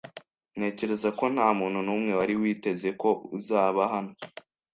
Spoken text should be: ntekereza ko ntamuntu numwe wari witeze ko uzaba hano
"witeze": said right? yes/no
yes